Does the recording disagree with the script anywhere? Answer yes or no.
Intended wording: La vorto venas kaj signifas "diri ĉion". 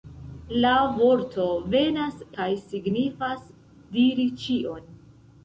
no